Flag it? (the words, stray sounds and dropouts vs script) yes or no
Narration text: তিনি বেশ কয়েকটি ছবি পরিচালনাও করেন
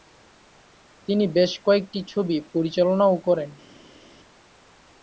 no